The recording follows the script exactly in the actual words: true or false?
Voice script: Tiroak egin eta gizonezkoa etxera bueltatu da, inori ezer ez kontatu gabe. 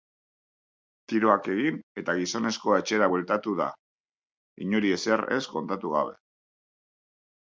true